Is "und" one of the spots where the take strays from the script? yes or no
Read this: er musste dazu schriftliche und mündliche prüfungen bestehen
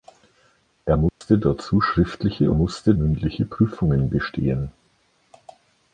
yes